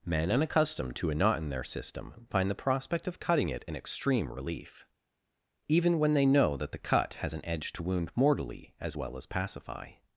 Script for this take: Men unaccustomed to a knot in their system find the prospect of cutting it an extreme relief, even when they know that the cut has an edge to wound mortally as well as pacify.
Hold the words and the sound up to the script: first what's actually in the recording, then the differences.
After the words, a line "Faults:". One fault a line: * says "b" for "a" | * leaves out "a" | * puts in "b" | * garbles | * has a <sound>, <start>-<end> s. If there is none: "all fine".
Men unaccustomed to a knot in their system find the prospect of cutting it an extreme relief, even when they know that the cut has an edge to wound mortally as well as pacify.
Faults:
all fine